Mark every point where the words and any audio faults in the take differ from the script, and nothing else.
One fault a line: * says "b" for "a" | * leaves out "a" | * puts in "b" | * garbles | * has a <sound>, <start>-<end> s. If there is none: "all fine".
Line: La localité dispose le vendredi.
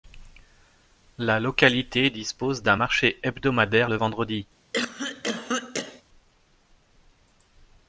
* puts in "d'un marché hebdomadaire"
* has a cough, 4.7-6.0 s